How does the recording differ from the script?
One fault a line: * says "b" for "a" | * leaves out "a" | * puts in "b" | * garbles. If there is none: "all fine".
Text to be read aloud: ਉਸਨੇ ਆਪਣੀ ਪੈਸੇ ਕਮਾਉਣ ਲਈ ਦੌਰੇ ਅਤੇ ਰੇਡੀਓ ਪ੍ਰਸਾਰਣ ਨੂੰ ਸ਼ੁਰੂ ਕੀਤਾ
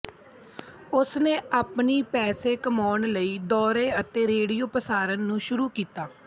all fine